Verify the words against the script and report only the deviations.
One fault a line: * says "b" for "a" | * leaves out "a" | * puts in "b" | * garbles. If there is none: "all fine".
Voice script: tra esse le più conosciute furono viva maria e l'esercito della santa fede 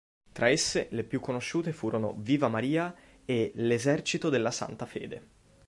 all fine